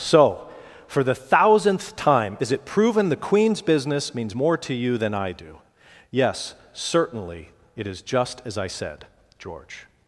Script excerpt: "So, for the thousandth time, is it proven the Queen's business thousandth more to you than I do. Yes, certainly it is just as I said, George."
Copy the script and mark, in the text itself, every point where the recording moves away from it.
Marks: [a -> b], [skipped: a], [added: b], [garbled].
"So, for the thousandth time, is it proven the Queen's business [thousandth -> means] more to you than I do. Yes, certainly it is just as I said, George."